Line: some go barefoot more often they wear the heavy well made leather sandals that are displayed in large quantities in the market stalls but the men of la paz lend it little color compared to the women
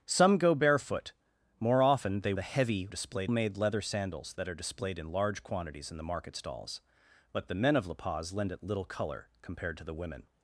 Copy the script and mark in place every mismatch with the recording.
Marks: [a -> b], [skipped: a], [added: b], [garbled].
some go barefoot more often they [skipped: wear] the heavy [well -> displayed] made leather sandals that are displayed in large quantities in the market stalls but the men of la paz lend it little color compared to the women